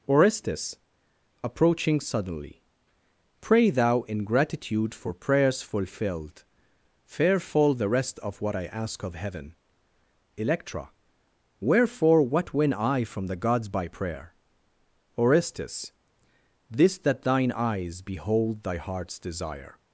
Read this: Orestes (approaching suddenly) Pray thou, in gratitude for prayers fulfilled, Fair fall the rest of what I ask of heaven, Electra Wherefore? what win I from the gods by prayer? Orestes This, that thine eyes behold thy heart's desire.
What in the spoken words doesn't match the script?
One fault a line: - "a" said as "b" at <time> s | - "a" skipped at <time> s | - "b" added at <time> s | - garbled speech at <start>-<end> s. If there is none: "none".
none